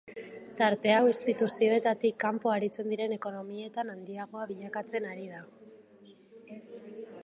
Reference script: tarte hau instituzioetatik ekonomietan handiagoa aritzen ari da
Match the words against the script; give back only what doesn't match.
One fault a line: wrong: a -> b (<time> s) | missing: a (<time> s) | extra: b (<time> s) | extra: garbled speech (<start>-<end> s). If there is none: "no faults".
extra: kanpo aritzen diren (2.3 s)
wrong: aritzen -> bilakatzen (4.5 s)